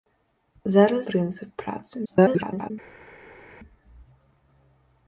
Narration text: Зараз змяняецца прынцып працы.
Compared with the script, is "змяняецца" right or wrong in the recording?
wrong